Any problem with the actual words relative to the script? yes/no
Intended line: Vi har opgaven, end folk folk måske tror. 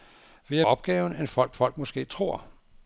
no